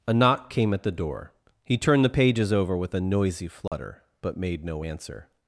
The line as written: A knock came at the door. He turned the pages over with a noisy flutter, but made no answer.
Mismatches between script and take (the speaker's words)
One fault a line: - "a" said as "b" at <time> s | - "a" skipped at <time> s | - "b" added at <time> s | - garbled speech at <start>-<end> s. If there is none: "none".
none